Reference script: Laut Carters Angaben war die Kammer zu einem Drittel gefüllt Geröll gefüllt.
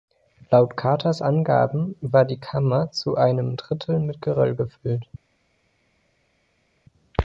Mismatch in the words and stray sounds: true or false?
true